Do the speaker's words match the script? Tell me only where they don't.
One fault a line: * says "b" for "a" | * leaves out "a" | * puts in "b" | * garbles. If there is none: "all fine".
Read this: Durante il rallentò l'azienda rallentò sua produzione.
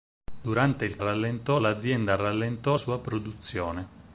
all fine